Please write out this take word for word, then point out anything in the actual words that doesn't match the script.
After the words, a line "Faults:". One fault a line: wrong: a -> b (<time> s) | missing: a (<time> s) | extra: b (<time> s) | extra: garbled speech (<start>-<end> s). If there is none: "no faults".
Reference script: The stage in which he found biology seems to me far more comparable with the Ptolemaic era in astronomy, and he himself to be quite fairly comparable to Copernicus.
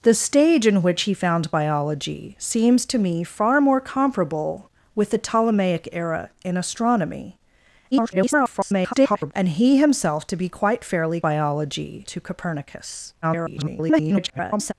The stage in which he found biology seems to me far more comparable with the Ptolemaic era in astronomy, [garbled] and he himself to be quite fairly biology to Copernicus. [garbled]
Faults:
extra: garbled speech (7.9-9.3 s)
wrong: comparable -> biology (11.2 s)
extra: garbled speech (13.2-14.7 s)